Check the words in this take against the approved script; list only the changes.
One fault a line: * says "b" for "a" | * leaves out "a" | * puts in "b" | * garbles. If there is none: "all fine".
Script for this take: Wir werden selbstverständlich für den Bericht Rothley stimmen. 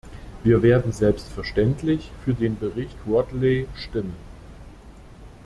all fine